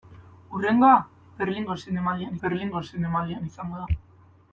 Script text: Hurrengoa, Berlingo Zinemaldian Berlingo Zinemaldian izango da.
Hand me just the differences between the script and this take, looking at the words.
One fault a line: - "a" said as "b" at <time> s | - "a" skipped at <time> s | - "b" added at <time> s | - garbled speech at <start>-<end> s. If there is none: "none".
none